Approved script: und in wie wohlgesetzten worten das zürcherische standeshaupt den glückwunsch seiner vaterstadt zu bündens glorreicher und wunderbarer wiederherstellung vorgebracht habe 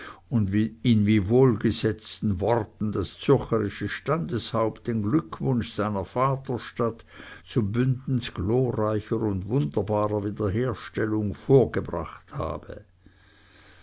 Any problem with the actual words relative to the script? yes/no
no